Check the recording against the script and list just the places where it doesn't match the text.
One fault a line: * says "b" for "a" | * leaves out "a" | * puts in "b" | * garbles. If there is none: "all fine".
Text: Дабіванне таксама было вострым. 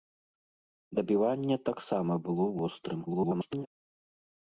* garbles